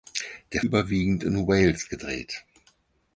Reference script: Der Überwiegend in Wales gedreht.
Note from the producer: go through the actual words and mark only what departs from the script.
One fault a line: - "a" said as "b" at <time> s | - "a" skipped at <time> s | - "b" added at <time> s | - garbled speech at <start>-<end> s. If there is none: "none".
none